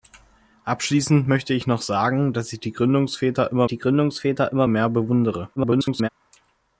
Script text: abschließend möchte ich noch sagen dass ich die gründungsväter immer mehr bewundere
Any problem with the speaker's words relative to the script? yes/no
yes